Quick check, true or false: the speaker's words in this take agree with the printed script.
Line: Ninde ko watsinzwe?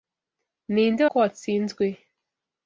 true